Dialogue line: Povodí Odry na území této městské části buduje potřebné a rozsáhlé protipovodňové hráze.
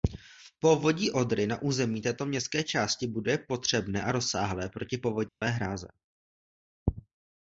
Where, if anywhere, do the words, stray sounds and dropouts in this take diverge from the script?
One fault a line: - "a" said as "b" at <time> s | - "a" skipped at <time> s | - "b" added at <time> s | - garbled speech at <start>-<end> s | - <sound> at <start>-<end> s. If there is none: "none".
- dropout at 5.3-5.4 s